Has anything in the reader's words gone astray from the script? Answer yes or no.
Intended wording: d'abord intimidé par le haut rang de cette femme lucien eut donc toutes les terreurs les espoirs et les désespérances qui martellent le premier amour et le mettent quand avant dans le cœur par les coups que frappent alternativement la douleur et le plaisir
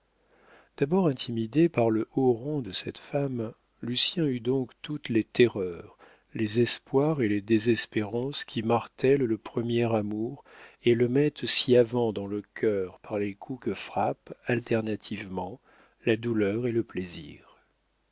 yes